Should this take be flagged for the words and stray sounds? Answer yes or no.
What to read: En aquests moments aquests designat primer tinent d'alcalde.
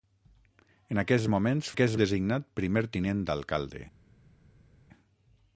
no